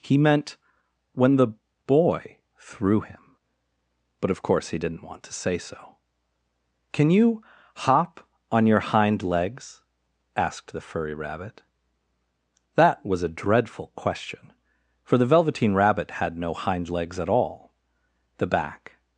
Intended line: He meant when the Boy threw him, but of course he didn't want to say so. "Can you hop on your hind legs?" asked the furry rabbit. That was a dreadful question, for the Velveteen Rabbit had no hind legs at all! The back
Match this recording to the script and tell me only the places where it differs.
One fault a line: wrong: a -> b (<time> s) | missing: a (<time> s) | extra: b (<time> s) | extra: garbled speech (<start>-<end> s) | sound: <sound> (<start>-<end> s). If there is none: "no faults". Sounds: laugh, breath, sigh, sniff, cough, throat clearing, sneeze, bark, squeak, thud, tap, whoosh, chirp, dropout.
no faults